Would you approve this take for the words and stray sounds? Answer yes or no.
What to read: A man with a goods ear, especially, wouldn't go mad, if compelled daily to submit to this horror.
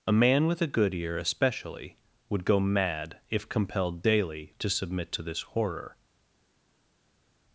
no